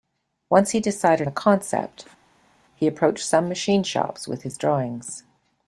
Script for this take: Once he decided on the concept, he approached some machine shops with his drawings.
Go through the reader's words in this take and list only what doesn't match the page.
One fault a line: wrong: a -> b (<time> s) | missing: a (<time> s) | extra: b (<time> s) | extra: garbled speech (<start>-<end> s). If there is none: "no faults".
missing: on (1.3 s)